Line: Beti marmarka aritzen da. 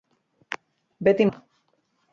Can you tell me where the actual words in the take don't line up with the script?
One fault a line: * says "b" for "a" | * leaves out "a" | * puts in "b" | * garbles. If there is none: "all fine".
* leaves out "marmarka aritzen"